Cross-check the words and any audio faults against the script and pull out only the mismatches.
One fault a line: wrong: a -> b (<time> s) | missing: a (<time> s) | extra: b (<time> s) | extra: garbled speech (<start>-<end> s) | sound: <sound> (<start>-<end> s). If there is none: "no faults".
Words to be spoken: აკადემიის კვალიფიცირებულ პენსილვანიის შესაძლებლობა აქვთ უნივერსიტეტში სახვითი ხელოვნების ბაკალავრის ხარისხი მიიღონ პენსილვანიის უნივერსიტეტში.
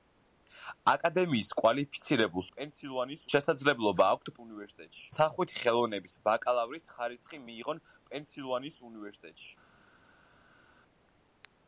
no faults